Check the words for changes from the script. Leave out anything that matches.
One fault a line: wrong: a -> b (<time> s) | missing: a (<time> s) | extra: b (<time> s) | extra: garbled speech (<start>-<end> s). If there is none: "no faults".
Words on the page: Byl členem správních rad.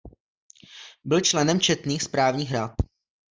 extra: četných (1.6 s)